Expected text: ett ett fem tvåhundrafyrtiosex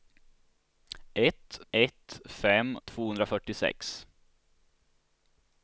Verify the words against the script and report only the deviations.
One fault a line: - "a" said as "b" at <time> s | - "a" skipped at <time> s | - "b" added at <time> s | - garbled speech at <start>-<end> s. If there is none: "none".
none